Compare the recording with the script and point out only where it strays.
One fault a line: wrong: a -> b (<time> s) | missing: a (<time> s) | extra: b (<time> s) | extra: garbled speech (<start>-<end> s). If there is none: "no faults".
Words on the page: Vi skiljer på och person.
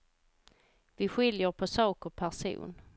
extra: sak (1.7 s)